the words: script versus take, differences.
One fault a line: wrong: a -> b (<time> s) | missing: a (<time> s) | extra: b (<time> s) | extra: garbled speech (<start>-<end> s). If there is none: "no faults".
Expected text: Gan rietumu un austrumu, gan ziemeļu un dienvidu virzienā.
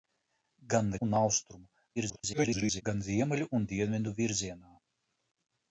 missing: rietumu (0.9 s)
extra: garbled speech (2.0-2.8 s)